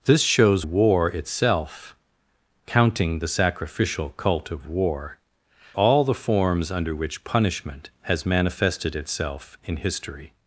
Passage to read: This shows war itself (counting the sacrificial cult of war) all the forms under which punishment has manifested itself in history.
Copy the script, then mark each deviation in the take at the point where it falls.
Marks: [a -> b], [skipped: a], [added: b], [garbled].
This shows war itself (counting the sacrificial cult of war) all the forms under which punishment has manifested itself in history.